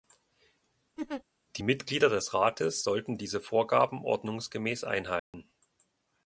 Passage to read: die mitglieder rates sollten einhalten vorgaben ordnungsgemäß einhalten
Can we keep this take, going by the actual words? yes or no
no